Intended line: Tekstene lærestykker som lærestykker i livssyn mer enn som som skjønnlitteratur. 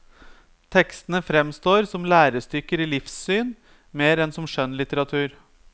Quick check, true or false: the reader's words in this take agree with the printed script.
false